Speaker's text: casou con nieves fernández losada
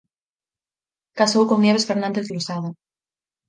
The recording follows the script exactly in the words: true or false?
true